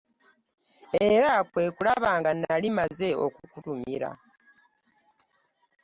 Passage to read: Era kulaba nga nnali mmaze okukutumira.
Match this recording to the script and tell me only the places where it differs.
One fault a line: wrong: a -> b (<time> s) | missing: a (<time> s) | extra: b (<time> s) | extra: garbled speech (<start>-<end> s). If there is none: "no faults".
extra: kwe (1.5 s)